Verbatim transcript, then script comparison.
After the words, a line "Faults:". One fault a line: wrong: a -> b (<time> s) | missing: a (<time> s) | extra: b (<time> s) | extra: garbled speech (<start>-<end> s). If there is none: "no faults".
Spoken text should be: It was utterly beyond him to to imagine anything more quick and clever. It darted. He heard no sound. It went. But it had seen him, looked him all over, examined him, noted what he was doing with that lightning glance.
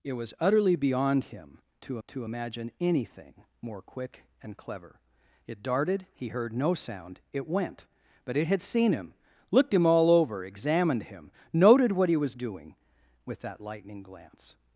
It was utterly beyond him to to imagine anything more quick and clever. It darted. He heard no sound. It went. But it had seen him, looked him all over, examined him, noted what he was doing with that lightning glance.
Faults:
no faults